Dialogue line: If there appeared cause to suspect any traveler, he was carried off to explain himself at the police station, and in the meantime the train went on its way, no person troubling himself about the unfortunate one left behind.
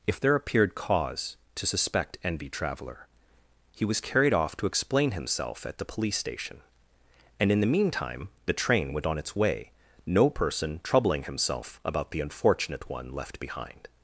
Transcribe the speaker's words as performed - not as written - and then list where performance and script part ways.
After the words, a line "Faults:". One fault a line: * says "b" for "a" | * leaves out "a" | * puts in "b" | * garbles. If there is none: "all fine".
If there appeared cause to suspect envy traveler, he was carried off to explain himself at the police station, and in the meantime the train went on its way, no person troubling himself about the unfortunate one left behind.
Faults:
* says "envy" for "any"